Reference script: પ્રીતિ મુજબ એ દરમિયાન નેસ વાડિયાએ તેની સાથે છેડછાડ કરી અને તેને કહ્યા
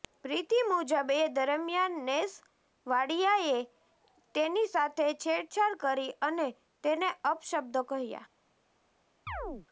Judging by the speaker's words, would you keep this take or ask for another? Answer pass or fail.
fail